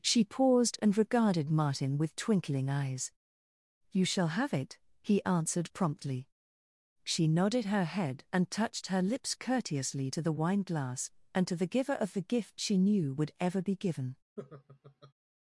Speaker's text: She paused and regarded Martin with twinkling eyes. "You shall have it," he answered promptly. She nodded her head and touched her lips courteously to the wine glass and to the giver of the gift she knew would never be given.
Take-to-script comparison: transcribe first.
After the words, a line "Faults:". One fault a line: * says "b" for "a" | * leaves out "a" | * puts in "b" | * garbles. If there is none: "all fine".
She paused and regarded Martin with twinkling eyes. "You shall have it," he answered promptly. She nodded her head and touched her lips courteously to the wine glass and to the giver of the gift she knew would ever be given.
Faults:
* says "ever" for "never"